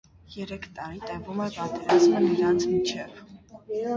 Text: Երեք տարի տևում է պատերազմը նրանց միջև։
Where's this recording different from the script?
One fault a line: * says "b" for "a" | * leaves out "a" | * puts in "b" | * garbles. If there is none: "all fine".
all fine